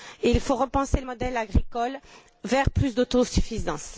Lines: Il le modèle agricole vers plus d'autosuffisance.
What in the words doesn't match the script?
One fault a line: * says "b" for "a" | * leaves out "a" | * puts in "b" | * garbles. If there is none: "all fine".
* puts in "faut repenser"